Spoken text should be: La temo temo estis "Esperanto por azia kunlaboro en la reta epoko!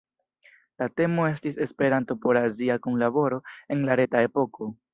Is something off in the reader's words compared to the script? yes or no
yes